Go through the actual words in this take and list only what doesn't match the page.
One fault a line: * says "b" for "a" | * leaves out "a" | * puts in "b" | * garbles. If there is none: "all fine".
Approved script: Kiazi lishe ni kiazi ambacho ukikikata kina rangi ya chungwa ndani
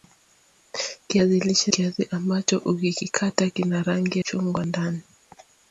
* leaves out "ni"
* leaves out "ya"